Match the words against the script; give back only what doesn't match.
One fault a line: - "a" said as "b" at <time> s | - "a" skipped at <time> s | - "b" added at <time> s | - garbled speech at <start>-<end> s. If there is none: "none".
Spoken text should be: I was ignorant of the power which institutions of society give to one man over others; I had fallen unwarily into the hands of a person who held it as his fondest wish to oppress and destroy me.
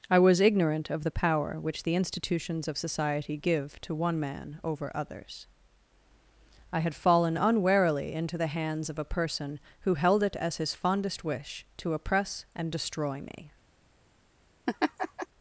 - "the" added at 1.8 s